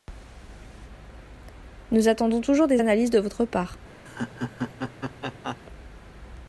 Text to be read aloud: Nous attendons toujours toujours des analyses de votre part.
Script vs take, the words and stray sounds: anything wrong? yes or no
yes